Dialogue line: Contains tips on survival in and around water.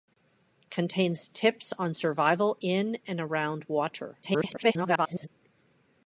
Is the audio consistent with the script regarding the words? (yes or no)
no